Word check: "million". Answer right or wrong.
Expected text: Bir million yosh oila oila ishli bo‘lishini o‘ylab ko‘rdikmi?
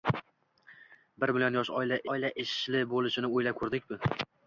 right